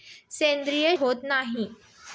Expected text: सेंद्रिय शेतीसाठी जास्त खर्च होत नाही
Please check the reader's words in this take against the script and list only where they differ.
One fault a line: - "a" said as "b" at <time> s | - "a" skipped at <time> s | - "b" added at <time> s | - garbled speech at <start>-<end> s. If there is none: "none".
- "शेतीसाठी जास्त खर्च" skipped at 0.9 s